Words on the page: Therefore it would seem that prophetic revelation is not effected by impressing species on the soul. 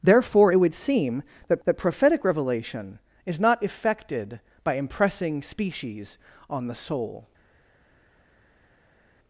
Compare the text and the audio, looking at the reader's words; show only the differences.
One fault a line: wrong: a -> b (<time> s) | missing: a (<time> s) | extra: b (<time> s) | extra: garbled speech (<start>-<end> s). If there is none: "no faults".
extra: that (1.6 s)